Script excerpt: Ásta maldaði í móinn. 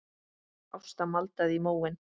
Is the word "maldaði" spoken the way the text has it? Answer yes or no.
yes